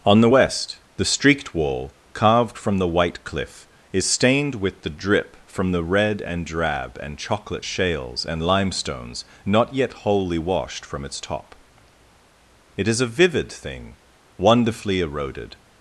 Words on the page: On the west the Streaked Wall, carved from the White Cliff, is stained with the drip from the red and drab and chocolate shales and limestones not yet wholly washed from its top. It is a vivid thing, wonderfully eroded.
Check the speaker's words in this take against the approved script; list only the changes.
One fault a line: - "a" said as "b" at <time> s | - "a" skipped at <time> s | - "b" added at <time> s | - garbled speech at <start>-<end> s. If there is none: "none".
none